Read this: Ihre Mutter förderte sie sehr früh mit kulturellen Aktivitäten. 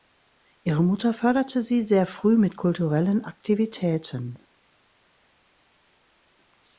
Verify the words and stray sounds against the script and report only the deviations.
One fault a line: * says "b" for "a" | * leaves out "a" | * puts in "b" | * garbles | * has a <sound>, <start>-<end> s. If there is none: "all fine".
all fine